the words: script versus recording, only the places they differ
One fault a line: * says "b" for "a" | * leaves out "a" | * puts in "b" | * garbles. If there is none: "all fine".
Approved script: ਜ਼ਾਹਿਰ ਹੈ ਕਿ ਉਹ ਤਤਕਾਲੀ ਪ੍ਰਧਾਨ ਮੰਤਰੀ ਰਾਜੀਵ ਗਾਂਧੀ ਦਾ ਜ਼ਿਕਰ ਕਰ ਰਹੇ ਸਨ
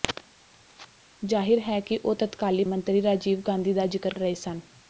* leaves out "ਪ੍ਰਧਾਨ"
* leaves out "ਕਰ"